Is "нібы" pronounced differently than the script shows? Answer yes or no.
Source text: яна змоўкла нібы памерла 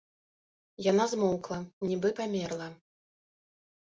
no